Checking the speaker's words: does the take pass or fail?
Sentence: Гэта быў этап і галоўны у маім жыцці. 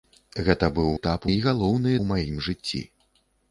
pass